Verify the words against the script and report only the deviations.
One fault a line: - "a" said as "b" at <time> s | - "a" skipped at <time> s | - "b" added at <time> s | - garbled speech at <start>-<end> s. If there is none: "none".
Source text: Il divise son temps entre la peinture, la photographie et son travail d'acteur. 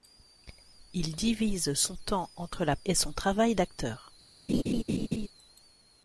- "peinture la photographie" skipped at 2.8 s